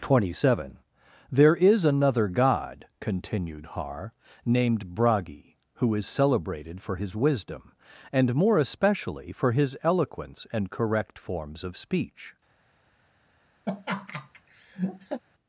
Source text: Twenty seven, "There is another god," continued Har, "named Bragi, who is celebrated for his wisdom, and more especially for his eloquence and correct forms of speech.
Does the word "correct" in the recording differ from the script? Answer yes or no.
no